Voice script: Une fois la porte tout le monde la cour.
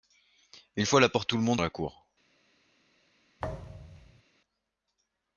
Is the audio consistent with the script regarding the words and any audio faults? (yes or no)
no